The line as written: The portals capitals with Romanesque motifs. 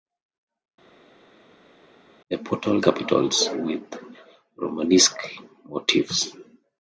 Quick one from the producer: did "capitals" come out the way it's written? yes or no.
yes